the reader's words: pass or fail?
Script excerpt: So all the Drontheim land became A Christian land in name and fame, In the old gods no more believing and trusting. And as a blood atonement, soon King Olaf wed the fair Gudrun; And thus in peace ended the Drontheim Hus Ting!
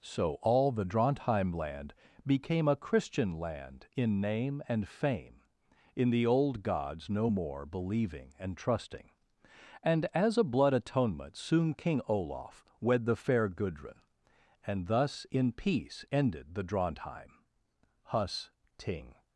pass